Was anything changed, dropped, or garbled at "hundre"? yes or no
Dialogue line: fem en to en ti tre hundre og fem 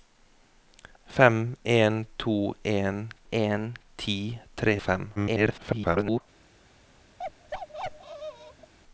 yes